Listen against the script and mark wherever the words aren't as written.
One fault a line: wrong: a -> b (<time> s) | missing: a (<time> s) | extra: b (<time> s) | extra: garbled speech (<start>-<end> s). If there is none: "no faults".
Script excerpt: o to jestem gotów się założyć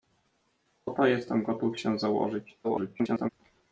extra: garbled speech (2.6-3.3 s)